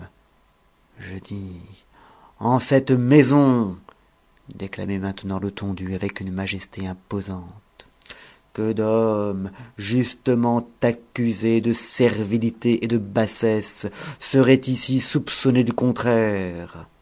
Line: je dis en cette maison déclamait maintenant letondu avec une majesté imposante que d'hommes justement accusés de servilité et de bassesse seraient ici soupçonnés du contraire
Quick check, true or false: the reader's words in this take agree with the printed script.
true